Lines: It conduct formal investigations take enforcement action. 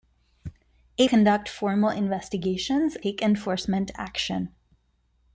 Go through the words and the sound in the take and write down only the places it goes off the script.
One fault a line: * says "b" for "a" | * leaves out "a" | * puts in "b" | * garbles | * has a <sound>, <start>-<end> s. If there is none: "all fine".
all fine